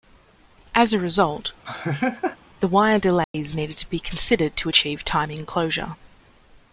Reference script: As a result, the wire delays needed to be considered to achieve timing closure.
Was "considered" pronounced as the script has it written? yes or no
yes